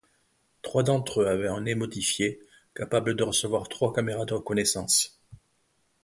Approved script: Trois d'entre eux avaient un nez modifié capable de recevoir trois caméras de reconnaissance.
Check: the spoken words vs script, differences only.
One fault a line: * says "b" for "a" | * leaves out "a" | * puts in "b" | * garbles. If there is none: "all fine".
all fine